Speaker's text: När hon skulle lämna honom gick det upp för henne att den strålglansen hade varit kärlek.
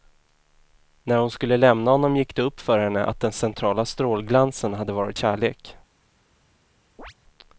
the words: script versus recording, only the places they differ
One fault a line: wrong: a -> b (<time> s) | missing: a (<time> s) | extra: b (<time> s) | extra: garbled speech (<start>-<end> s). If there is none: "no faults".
extra: centrala (3.3 s)